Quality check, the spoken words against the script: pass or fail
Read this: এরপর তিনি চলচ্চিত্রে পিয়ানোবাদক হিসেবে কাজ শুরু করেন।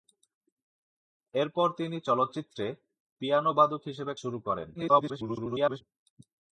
fail